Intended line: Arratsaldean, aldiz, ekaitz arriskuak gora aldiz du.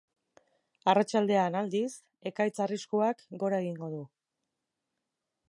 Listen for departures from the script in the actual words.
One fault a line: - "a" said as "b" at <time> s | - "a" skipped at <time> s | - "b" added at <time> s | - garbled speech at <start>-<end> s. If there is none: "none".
- "aldiz" said as "egingo" at 3.7 s